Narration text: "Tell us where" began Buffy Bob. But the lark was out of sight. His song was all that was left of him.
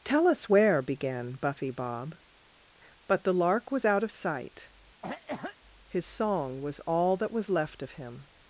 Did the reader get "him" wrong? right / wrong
right